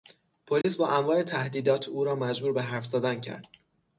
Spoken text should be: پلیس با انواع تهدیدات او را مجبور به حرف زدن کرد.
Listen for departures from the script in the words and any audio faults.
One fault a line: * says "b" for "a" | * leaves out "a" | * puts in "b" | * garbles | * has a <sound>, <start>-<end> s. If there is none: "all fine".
* has a dropout, 0.6-0.6 s